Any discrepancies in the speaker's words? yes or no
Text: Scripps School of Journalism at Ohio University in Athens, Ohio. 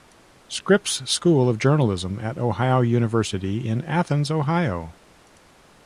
no